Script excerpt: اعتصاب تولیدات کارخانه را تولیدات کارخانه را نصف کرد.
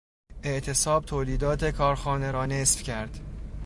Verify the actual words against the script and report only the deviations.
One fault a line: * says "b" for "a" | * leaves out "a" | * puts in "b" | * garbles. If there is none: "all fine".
* leaves out "تولیدات کارخانه را"